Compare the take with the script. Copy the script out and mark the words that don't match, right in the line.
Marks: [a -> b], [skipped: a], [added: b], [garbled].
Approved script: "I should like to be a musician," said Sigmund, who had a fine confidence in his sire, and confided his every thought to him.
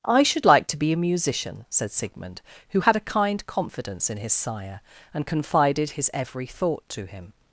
"I should like to be a musician," said Sigmund, who had a [fine -> kind] confidence in his sire, and confided his every thought to him.